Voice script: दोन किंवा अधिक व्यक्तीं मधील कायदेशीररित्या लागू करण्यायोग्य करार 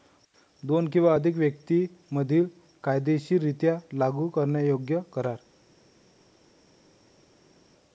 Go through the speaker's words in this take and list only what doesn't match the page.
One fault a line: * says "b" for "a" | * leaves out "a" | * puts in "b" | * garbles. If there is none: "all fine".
all fine